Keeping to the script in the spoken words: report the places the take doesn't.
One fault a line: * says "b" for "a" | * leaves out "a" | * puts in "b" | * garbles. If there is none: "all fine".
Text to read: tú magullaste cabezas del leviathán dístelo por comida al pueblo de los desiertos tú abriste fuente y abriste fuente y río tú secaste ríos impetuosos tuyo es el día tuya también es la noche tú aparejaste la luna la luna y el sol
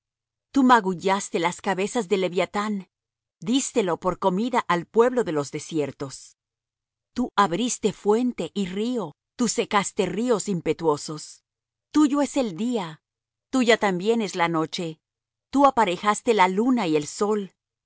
* puts in "las"
* leaves out "abriste fuente y"
* leaves out "la luna"